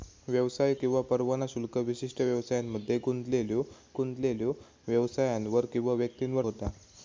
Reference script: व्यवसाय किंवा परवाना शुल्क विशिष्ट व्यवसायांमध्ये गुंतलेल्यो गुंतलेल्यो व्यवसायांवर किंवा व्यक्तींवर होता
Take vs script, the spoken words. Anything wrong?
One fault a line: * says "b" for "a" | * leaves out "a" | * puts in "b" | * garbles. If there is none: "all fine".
all fine